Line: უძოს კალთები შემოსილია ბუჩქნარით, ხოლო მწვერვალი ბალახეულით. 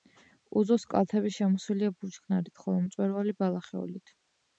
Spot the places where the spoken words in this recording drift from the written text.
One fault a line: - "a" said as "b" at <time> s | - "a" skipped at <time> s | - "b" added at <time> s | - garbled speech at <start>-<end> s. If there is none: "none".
none